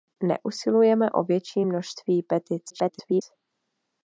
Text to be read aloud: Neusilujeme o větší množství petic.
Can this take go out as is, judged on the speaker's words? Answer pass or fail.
fail